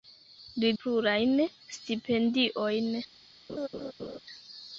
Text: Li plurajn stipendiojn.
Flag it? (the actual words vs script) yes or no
no